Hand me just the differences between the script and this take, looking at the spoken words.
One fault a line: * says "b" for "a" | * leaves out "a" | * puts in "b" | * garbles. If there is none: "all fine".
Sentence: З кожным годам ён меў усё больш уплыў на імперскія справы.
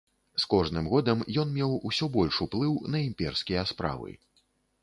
all fine